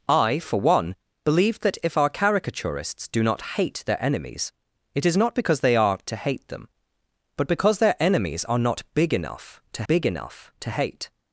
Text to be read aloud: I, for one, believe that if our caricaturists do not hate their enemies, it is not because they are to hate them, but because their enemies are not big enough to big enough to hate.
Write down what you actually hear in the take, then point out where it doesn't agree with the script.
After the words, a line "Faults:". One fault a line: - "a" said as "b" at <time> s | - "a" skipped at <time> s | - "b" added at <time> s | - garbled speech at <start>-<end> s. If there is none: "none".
I, for one, believe that if our caricaturists do not hate their enemies, it is not because they are to hate them, but because their enemies are not big enough to big enough to hate.
Faults:
none